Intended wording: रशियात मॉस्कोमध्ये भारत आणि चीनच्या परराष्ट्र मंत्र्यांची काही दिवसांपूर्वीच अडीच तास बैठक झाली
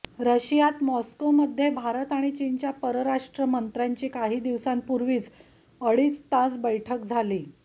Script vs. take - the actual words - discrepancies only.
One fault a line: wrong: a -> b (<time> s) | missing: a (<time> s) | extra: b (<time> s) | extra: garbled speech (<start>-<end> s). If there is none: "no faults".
no faults